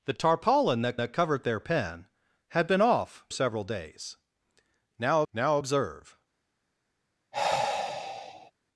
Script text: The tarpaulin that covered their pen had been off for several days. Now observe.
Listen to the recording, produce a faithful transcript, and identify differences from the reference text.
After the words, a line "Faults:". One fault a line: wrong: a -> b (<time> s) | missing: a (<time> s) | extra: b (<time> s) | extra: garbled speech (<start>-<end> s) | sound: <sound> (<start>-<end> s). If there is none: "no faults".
The tarpaulin that that covered their pen had been off several days. Now now observe.
Faults:
extra: that (1.0 s)
missing: for (3.3 s)
extra: now (5.3 s)
sound: sigh (7.3-8.5 s)